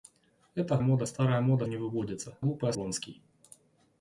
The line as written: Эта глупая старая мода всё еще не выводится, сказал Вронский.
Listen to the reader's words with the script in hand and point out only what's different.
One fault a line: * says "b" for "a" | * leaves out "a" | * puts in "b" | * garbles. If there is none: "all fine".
* says "мода" for "глупая"
* leaves out "всё еще"
* says "глупая" for "сказал"